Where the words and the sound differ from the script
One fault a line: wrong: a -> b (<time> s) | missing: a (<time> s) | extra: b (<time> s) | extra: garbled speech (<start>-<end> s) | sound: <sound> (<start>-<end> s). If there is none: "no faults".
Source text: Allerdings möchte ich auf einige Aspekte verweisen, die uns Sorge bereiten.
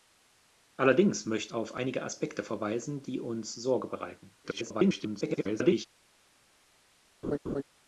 missing: ich (1.5 s)
extra: garbled speech (4.4-5.9 s)
sound: laugh (7.2-7.6 s)